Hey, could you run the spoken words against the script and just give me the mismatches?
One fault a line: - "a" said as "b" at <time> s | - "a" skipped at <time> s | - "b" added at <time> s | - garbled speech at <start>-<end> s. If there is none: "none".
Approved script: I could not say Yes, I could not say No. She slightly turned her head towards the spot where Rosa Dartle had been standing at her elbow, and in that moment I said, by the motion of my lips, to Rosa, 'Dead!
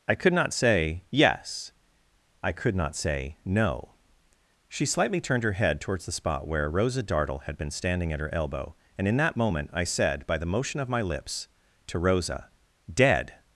none